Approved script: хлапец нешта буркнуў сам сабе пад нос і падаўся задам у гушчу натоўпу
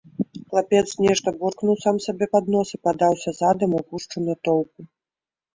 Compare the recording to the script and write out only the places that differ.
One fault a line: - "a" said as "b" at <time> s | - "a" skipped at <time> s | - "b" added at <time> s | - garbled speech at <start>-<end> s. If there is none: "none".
none